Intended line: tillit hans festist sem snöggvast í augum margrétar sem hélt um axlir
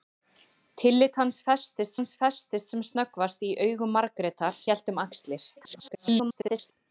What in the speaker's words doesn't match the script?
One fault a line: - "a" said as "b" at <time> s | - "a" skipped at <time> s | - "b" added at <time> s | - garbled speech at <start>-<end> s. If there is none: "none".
- "hans festist" added at 2.0 s
- "sem" skipped at 4.6 s
- garbled speech at 5.6-6.7 s